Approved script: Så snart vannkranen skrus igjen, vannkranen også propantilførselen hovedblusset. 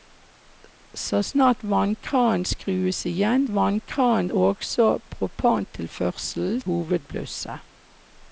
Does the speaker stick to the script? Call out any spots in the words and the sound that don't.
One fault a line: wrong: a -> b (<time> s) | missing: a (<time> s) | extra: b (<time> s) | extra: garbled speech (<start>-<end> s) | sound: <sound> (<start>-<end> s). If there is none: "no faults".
no faults